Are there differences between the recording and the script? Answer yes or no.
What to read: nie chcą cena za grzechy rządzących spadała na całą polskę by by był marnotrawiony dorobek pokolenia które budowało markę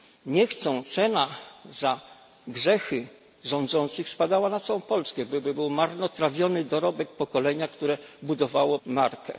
no